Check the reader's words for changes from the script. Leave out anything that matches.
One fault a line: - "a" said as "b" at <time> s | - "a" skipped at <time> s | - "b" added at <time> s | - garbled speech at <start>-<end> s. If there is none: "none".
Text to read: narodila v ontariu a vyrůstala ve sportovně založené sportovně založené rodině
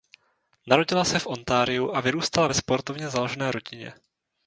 - "se" added at 1.1 s
- "sportovně založené" skipped at 3.5 s